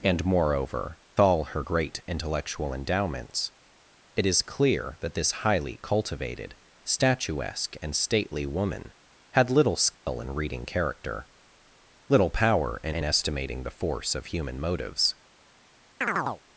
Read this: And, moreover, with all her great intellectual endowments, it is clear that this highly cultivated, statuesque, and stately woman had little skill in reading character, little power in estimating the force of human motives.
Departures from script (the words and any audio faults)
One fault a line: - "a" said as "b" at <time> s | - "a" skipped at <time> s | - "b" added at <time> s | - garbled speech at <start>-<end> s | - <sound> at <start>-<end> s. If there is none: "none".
- "with" skipped at 1.0 s
- dropout at 9.9-10.1 s
- "in" added at 12.9 s
- chirp at 16.0-16.4 s